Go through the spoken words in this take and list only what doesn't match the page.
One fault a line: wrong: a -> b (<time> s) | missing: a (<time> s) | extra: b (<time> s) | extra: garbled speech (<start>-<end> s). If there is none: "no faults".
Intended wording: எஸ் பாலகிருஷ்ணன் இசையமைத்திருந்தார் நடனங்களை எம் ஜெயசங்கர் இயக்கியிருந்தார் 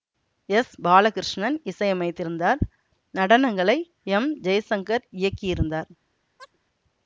no faults